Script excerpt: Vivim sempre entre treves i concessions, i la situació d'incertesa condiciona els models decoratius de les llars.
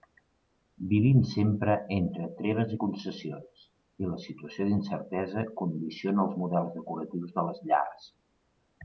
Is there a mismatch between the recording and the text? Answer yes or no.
no